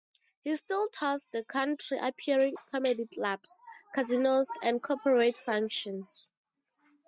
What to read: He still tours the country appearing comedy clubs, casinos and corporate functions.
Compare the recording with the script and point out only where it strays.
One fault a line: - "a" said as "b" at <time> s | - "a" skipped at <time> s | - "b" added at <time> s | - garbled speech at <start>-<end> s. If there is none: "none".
none